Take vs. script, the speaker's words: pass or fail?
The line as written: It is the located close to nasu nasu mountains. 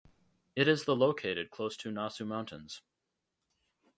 fail